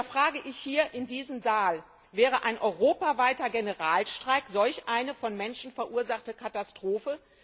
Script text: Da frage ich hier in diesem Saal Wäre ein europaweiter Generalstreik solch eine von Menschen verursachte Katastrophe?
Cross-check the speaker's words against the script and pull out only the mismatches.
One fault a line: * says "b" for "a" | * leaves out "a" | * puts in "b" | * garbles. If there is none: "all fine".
all fine